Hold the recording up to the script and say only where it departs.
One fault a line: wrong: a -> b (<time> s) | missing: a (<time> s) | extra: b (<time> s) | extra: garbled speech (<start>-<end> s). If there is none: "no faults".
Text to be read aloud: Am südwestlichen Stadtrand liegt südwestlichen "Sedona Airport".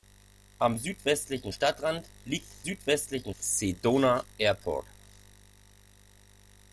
no faults